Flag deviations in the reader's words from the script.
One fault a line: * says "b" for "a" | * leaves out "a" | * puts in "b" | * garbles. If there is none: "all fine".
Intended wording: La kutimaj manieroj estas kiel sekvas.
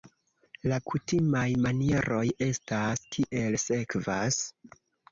all fine